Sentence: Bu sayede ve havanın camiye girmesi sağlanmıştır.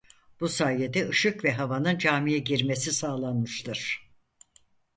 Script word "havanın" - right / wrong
right